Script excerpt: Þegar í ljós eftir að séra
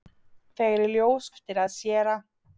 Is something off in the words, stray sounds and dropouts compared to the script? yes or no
no